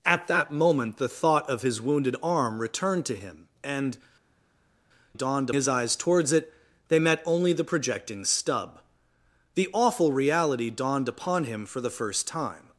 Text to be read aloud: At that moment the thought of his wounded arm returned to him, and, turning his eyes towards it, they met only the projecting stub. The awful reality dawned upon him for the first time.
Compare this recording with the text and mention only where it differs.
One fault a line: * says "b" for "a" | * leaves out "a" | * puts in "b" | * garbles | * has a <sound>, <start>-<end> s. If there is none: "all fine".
* says "dawned" for "turning"